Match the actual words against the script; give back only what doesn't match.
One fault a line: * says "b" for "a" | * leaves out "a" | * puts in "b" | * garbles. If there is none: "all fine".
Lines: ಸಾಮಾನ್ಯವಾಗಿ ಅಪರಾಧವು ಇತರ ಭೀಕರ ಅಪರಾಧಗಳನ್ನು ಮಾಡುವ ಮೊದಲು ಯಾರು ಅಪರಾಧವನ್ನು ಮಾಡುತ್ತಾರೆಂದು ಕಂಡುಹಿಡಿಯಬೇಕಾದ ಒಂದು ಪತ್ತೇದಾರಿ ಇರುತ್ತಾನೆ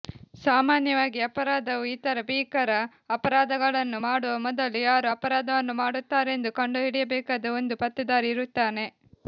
all fine